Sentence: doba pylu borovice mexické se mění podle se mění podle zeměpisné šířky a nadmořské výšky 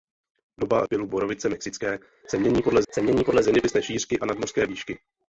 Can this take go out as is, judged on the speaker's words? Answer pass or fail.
pass